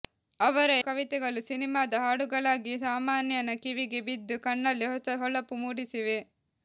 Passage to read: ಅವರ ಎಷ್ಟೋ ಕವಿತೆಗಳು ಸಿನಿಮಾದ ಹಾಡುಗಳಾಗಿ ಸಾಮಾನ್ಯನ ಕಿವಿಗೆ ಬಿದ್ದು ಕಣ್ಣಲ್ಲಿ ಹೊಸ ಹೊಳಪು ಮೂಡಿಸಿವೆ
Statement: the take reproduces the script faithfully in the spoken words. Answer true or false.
false